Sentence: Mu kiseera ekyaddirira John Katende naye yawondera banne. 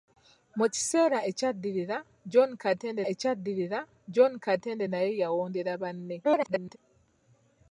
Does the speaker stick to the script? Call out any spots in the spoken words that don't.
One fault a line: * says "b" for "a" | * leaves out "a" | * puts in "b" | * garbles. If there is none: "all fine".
* puts in "ekyaddirira John Katende"
* garbles